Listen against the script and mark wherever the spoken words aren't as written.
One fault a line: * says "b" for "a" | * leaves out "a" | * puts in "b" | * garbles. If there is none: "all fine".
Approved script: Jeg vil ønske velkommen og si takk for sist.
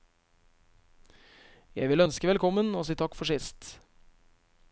all fine